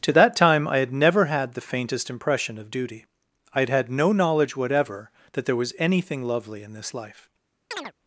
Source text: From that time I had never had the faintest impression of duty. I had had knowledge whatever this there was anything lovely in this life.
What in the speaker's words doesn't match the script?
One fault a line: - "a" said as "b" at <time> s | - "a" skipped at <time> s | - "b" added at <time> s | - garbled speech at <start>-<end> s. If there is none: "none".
- "From" said as "To" at 0.0 s
- "no" added at 3.9 s
- "this" said as "that" at 5.3 s